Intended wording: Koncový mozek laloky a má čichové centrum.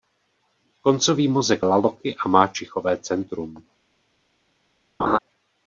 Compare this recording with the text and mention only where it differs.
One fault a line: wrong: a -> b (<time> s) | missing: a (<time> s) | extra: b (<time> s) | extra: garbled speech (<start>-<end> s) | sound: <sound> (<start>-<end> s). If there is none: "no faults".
sound: laugh (5.0-5.2 s)